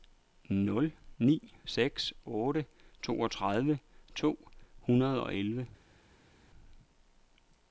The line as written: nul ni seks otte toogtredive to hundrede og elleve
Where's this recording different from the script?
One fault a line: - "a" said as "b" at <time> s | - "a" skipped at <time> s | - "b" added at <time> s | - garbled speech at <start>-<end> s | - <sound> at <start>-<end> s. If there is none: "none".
none